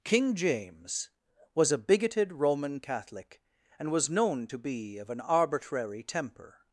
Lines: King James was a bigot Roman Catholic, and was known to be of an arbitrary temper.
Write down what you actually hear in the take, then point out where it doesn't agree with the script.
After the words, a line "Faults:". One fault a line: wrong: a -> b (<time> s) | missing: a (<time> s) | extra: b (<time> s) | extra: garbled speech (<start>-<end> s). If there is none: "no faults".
King James was a bigoted Roman Catholic, and was known to be of an arbitrary temper.
Faults:
wrong: bigot -> bigoted (1.8 s)